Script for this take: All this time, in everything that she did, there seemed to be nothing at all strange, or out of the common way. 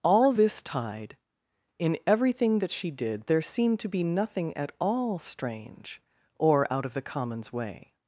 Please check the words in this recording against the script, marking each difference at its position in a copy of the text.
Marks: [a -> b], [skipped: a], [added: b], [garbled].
All this [time, -> tide] in everything that she did, there seemed to be nothing at all strange, or out of the [common -> commons] way.